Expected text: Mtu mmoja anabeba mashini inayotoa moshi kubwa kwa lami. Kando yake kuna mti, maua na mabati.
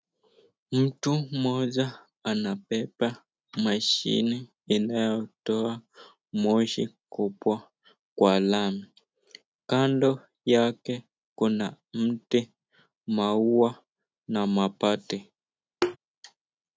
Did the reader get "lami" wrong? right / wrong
right